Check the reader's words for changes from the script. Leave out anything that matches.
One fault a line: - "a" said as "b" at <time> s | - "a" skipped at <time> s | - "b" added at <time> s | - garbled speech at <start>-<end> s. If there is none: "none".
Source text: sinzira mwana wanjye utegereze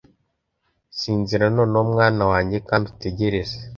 - "noneho" added at 1.6 s
- "kandi" added at 2.7 s